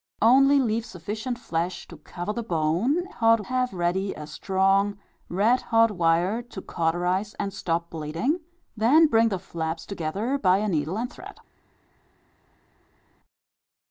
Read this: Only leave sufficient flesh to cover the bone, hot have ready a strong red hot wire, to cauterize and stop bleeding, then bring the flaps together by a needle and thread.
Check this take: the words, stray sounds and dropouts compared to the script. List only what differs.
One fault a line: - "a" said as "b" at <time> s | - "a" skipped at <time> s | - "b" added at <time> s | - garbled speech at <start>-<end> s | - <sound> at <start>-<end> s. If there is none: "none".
none